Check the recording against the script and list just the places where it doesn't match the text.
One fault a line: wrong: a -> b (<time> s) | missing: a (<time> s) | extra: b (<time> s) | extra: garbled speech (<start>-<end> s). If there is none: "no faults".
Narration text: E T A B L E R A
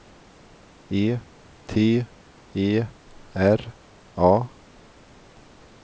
missing: A B L (2.1 s)